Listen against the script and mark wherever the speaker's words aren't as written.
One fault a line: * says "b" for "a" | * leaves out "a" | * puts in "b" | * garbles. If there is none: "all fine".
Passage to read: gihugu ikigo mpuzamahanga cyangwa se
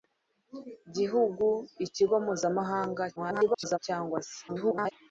* garbles
* garbles